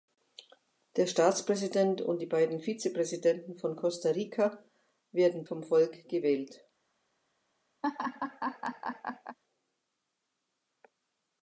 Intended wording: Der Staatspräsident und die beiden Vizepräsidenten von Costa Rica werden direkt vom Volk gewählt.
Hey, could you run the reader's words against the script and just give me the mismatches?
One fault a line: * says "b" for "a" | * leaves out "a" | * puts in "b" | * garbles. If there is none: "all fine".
* leaves out "direkt"